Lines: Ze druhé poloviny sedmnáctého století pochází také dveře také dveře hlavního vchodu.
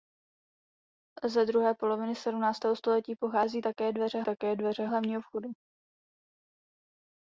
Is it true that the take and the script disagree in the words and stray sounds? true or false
false